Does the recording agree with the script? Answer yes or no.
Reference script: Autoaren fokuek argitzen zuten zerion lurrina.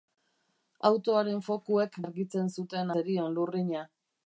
yes